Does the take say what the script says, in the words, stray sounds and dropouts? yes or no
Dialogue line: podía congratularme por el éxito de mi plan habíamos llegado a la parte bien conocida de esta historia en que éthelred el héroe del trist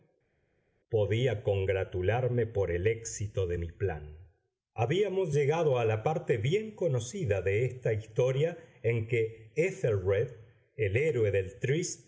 yes